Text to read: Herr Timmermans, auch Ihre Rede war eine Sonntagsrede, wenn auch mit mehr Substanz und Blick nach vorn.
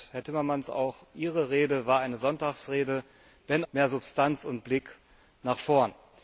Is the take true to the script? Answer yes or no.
no